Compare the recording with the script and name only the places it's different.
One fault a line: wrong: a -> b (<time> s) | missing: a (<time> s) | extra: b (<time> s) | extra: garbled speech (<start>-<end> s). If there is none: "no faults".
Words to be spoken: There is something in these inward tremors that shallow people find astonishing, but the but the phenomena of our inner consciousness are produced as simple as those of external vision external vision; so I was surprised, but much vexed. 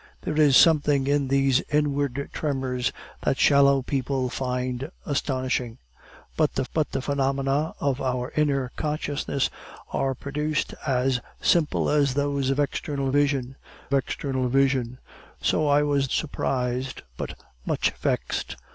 no faults